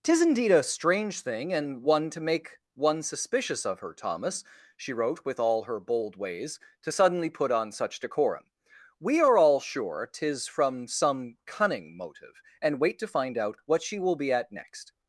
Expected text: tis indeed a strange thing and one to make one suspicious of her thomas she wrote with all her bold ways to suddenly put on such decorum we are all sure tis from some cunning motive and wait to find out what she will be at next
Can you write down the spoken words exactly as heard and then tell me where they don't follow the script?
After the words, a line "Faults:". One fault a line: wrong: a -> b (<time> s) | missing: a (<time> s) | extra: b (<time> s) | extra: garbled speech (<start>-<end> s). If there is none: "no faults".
tis indeed a strange thing and one to make one suspicious of her thomas she wrote with all her bold ways to suddenly put on such decorum we are all sure tis from some cunning motive and wait to find out what she will be at next
Faults:
no faults